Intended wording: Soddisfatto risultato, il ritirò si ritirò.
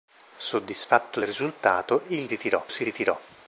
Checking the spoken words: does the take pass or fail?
pass